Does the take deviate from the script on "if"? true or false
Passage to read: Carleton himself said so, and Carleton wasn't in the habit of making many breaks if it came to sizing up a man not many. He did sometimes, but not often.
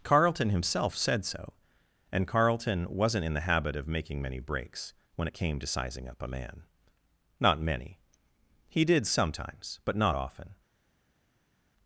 true